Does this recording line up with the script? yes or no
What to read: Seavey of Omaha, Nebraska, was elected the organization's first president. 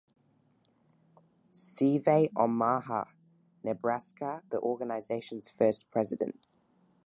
no